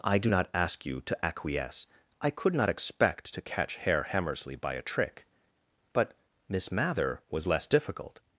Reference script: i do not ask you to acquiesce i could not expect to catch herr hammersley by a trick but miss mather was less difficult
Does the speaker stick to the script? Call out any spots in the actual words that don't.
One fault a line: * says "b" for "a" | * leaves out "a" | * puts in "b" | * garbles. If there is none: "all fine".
all fine